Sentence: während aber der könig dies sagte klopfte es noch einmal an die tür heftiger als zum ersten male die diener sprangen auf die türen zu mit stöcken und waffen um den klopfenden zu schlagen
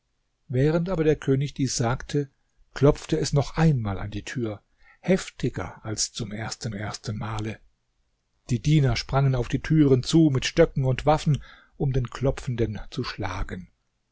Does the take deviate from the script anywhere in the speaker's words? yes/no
yes